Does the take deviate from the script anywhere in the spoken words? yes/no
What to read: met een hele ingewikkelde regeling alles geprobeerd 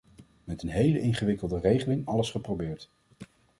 no